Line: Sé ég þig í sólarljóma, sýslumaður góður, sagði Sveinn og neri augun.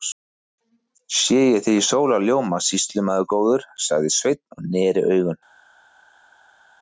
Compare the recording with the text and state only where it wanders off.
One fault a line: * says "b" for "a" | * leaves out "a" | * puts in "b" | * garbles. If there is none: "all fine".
all fine